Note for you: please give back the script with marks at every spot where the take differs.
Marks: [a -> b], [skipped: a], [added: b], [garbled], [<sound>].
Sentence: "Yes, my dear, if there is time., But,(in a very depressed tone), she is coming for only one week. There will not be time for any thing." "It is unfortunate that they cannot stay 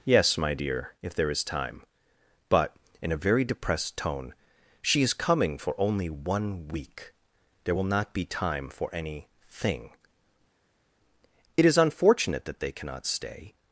"Yes, my dear, if there is time., But,(in a very depressed tone), she is coming for only one week. There will not be time for any thing." "It is unfortunate that they cannot stay